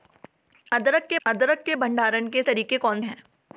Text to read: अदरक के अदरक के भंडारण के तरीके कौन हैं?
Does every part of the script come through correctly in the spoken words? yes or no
yes